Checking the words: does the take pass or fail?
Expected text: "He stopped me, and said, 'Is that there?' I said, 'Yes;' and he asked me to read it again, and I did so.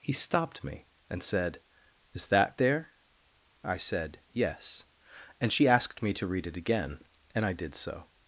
fail